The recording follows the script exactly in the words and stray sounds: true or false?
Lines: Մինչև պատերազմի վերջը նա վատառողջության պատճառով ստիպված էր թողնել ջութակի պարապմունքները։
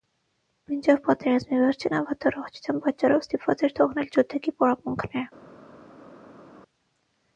true